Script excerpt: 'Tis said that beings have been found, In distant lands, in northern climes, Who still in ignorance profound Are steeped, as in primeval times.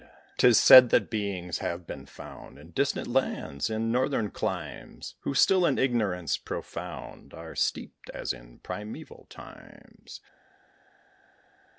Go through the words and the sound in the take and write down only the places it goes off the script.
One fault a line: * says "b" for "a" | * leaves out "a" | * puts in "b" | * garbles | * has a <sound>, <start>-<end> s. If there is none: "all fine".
all fine